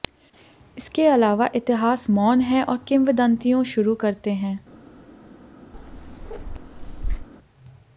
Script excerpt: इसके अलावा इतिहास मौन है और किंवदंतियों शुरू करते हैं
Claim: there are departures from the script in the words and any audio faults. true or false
true